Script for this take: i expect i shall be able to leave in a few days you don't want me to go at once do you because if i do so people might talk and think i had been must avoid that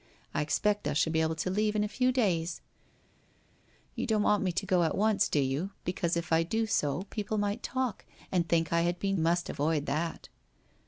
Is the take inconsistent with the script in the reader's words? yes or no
no